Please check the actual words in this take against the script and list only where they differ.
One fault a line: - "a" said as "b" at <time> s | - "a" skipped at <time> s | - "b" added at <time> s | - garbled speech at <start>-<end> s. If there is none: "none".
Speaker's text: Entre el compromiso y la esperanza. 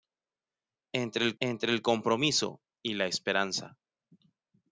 - "entre el" added at 1.4 s